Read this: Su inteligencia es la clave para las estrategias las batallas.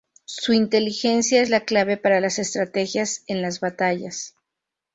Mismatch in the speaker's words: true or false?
true